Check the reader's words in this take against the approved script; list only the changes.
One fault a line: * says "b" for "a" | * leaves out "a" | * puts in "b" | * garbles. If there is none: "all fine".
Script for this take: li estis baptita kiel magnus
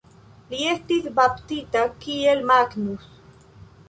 all fine